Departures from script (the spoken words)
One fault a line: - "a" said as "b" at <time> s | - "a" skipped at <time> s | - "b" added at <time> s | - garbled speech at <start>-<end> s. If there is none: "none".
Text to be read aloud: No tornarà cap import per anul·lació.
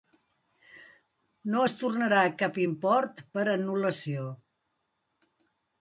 - "es" added at 1.7 s